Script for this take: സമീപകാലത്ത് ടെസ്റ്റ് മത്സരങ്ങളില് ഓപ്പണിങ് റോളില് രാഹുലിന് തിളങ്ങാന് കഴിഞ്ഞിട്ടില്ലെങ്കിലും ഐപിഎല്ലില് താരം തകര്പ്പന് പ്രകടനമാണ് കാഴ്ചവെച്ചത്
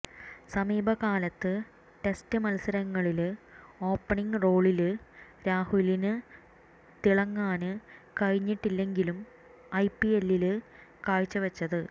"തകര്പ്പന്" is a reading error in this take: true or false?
true